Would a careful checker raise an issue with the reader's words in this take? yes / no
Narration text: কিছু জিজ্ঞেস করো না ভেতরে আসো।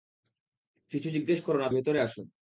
no